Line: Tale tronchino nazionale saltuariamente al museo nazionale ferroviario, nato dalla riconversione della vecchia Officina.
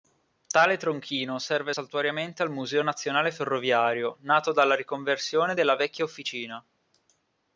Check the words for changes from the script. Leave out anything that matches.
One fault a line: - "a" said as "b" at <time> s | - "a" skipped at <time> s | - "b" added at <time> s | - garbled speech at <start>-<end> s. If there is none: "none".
- "nazionale" said as "serve" at 1.4 s